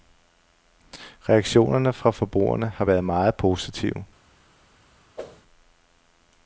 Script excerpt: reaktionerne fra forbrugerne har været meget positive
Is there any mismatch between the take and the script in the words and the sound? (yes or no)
yes